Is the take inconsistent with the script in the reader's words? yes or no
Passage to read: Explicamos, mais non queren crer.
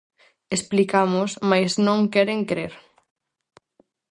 no